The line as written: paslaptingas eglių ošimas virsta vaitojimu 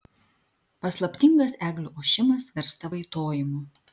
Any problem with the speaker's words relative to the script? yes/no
no